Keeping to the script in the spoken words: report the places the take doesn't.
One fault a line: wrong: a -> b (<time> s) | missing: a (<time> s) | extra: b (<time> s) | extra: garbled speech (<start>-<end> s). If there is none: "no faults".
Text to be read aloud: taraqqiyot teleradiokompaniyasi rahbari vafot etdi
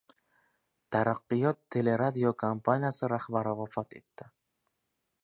no faults